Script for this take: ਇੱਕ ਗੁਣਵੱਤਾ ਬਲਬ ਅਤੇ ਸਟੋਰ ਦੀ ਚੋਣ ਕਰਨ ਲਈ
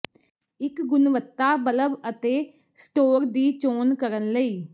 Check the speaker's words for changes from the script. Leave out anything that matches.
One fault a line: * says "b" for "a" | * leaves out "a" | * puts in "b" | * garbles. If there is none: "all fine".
all fine